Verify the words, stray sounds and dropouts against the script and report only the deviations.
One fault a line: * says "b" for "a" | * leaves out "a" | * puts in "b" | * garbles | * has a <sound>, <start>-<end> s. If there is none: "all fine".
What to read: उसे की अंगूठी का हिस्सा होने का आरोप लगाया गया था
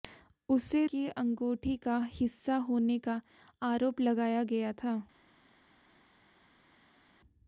all fine